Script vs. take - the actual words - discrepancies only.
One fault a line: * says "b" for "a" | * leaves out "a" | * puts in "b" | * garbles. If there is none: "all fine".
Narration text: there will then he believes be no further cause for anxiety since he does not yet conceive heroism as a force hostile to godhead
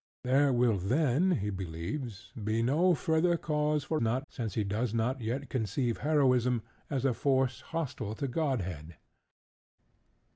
* says "not" for "anxiety"